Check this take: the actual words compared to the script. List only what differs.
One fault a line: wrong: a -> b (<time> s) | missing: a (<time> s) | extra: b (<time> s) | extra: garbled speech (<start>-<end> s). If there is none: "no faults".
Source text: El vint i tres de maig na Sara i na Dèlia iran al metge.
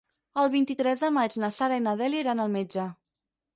no faults